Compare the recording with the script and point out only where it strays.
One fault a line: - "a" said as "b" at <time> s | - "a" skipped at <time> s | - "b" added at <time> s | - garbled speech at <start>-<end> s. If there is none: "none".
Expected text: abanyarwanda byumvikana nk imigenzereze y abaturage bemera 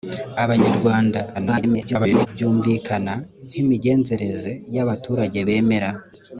- garbled speech at 1.3-2.3 s